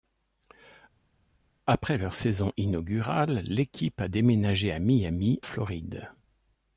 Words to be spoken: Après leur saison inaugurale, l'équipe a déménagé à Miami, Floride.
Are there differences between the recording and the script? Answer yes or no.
no